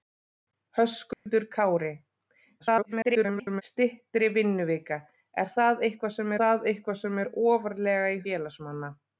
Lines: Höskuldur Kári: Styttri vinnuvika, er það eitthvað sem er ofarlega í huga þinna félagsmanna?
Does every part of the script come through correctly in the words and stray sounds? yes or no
no